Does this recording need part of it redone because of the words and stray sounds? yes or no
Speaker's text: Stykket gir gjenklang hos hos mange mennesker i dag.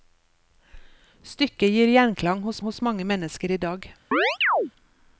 yes